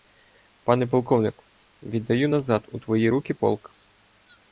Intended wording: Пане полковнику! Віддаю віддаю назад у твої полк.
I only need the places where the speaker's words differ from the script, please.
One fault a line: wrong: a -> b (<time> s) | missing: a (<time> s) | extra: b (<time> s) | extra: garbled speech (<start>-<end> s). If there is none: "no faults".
missing: віддаю (2.3 s)
extra: руки (3.1 s)